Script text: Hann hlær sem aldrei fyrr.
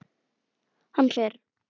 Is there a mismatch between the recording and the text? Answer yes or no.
yes